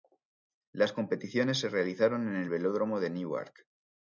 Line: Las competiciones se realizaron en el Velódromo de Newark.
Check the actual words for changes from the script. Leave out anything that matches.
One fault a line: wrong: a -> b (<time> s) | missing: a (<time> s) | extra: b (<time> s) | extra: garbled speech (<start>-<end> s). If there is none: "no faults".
no faults